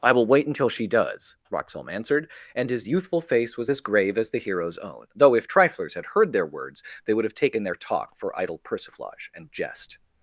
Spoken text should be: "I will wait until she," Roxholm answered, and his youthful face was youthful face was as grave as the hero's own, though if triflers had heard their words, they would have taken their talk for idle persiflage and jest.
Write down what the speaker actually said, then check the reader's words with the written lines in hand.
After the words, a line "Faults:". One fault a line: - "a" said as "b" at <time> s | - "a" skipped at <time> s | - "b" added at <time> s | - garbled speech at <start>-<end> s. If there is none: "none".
"I will wait until she does," Roxholm answered, and his youthful face was as grave as the hero's own, though if triflers had heard their words, they would have taken their talk for idle persiflage and jest.
Faults:
- "does" added at 0.9 s
- "youthful face was" skipped at 3.7 s